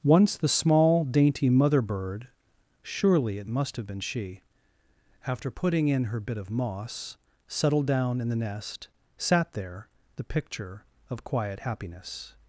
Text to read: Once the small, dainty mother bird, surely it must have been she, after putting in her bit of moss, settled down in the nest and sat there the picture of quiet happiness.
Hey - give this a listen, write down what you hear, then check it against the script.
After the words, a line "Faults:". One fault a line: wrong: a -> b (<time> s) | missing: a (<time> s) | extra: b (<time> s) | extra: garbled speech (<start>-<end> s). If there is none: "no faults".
Once the small, dainty mother bird, surely it must have been she, after putting in her bit of moss, settled down in the nest sat there the picture of quiet happiness.
Faults:
missing: and (8.9 s)